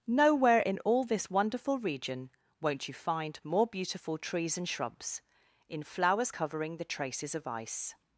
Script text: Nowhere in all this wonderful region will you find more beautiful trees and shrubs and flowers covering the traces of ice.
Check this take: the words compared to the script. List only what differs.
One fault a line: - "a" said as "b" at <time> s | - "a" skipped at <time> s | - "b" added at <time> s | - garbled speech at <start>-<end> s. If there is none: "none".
- "will" said as "won't" at 2.6 s
- "and" said as "in" at 5.7 s